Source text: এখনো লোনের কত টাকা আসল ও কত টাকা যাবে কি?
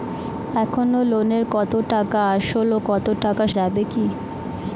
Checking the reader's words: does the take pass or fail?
pass